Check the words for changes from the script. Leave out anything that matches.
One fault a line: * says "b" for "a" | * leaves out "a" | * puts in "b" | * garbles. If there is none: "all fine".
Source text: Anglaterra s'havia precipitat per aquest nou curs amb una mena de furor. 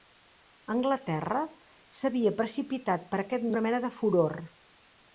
* leaves out "nou curs amb"